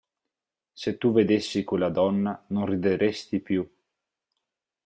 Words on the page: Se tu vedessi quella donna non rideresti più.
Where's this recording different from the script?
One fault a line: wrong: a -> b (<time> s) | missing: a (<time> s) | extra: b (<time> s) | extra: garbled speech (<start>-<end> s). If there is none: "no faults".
no faults